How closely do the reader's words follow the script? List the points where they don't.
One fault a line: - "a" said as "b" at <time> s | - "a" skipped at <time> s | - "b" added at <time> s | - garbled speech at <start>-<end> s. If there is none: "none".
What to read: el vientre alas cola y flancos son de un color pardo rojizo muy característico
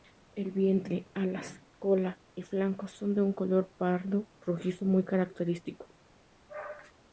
none